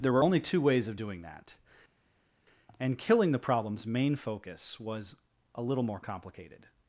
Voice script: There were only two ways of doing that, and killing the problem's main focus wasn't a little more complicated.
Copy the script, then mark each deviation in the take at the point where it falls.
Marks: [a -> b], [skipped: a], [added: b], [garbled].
There were only two ways of doing that, and killing the problem's main focus [wasn't -> was] a little more complicated.